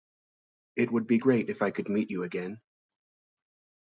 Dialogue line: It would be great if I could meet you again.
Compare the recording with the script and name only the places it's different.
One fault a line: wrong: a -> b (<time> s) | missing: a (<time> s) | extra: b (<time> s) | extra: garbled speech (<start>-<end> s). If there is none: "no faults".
no faults